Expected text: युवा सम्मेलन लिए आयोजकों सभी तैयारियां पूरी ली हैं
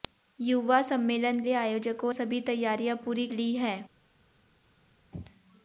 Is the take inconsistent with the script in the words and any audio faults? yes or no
no